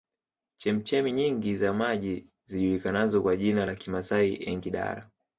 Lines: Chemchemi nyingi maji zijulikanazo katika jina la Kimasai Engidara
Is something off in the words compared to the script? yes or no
yes